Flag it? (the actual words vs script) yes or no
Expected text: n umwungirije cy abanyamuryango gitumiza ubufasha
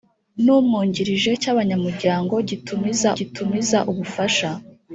yes